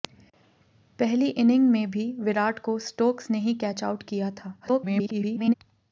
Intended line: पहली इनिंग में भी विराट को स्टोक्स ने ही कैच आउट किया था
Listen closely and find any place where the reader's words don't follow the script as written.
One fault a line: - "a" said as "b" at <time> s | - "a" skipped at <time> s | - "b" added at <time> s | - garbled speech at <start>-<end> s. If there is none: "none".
- garbled speech at 4.6-5.5 s